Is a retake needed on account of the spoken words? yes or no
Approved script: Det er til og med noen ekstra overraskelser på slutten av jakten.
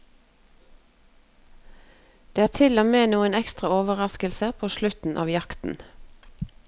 no